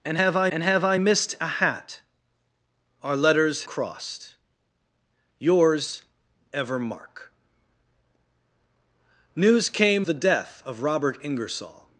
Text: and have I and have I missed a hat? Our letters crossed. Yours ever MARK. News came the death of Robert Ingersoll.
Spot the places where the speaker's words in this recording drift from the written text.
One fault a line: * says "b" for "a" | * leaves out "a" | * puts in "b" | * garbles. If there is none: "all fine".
all fine